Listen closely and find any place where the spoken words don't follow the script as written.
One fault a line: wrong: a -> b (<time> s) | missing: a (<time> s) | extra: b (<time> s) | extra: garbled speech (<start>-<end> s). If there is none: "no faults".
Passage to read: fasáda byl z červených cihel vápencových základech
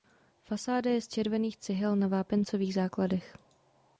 wrong: byl -> je (0.9 s)
extra: na (1.9 s)